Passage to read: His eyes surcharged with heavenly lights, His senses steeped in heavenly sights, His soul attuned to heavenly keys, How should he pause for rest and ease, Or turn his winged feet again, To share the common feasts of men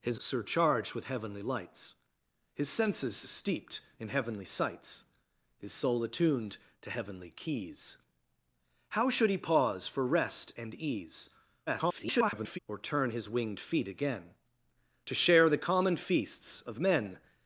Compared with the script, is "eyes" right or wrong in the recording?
wrong